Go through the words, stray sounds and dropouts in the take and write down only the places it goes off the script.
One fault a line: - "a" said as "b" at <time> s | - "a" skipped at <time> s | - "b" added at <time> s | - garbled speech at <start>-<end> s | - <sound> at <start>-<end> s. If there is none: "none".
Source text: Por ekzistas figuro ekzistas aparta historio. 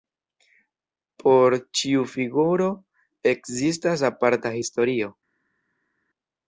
- "ekzistas" said as "ĉiu" at 1.8 s